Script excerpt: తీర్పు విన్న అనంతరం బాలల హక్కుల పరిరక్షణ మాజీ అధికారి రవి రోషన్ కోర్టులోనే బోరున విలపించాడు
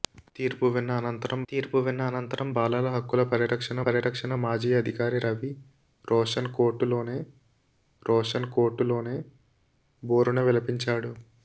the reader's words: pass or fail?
fail